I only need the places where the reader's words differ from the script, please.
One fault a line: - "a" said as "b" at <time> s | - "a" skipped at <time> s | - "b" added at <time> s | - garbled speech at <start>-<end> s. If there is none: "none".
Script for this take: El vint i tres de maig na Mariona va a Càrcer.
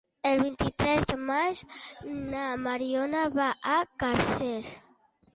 none